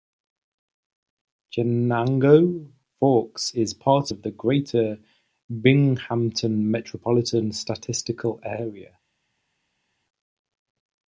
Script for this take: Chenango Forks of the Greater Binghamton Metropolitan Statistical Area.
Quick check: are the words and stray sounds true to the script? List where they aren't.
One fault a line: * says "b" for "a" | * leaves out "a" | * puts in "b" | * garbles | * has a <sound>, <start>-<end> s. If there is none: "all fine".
* puts in "is part"